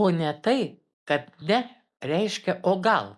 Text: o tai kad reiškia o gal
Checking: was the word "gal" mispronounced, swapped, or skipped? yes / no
no